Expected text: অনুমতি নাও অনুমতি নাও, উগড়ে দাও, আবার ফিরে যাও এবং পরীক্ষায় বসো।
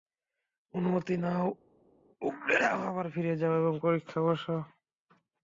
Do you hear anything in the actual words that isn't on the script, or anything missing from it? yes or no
yes